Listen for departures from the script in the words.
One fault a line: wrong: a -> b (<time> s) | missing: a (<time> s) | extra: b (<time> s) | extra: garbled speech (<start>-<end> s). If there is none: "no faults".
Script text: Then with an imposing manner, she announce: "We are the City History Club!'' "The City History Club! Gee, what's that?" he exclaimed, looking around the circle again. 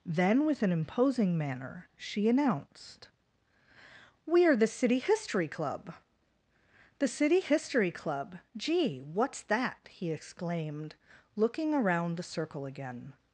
wrong: announce -> announced (2.3 s)